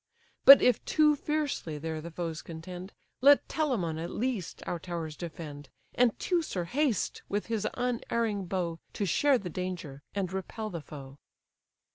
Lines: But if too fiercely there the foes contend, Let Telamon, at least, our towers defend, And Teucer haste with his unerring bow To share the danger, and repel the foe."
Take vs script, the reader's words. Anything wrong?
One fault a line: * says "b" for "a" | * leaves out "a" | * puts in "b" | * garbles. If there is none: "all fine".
all fine